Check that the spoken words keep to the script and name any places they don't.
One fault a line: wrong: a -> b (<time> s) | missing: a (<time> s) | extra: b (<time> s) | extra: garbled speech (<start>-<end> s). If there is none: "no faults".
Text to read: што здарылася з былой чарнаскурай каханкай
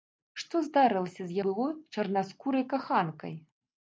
no faults